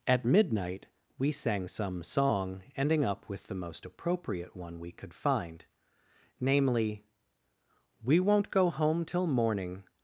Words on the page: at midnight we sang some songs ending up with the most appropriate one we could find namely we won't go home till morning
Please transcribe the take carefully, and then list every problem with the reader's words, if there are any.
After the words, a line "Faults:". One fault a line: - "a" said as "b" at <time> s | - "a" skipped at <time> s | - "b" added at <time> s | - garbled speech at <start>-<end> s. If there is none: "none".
at midnight we sang some song ending up with the most appropriate one we could find namely we won't go home till morning
Faults:
- "songs" said as "song" at 2.0 s